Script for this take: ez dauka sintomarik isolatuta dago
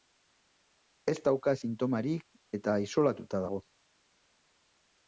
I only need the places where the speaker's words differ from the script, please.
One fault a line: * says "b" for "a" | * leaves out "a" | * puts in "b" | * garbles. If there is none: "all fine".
* puts in "eta"